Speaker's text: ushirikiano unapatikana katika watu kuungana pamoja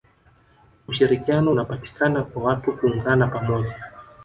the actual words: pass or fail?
fail